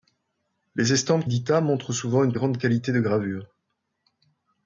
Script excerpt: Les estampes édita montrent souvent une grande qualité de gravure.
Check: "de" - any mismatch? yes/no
no